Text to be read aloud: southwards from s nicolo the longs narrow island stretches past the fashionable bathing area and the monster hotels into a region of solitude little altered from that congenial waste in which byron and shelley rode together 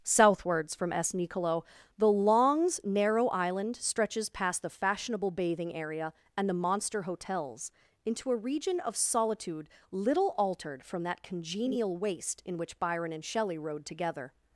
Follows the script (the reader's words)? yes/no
yes